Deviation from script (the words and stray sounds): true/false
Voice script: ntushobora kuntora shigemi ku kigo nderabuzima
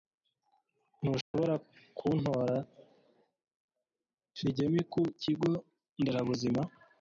true